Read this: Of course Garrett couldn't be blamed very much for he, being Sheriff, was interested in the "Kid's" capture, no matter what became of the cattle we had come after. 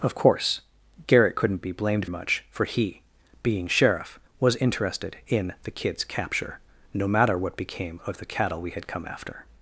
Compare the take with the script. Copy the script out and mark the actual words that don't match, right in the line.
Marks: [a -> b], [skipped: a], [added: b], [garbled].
Of course Garrett couldn't be blamed [skipped: very] much for he, being Sheriff, was interested in the "Kid's" capture, no matter what became of the cattle we had come after.